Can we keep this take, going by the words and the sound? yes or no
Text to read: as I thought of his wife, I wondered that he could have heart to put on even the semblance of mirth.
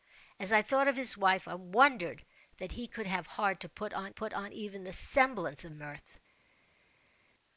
no